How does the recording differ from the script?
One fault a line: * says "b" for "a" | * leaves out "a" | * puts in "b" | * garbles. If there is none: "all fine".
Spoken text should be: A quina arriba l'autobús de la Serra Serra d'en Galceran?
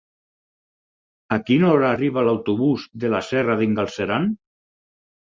* puts in "hora"
* leaves out "Serra"